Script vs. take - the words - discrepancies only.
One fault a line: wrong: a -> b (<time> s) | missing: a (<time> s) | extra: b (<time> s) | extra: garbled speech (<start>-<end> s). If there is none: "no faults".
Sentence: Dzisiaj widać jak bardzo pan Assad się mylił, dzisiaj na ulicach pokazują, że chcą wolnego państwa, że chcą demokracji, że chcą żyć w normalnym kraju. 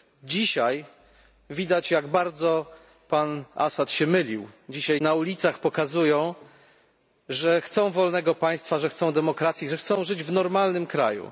no faults